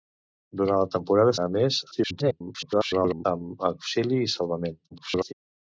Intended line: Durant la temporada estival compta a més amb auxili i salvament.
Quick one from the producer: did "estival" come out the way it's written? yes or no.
no